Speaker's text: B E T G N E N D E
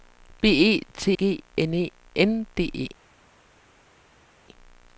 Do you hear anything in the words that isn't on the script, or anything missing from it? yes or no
no